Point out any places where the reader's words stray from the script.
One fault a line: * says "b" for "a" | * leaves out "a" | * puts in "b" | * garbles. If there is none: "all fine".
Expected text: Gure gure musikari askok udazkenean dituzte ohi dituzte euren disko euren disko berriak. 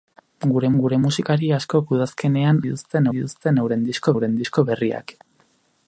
all fine